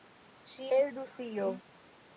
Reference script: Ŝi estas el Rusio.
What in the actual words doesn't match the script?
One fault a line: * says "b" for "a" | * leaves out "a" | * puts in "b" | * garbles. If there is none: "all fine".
* leaves out "estas"